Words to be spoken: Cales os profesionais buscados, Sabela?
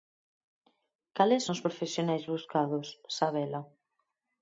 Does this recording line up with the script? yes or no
yes